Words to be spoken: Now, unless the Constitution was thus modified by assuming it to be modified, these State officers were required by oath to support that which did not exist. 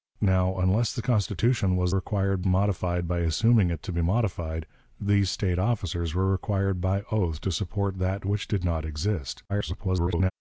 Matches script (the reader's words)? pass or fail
fail